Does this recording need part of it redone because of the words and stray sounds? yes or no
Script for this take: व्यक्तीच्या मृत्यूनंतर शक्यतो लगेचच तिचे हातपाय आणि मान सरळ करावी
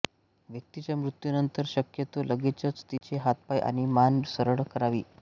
yes